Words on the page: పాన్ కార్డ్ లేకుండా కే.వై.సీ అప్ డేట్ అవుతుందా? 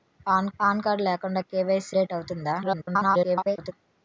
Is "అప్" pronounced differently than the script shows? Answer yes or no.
yes